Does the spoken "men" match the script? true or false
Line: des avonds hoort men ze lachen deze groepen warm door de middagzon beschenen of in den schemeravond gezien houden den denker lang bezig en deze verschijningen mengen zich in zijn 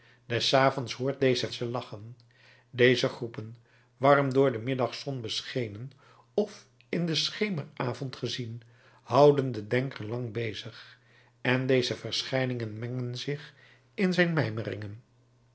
false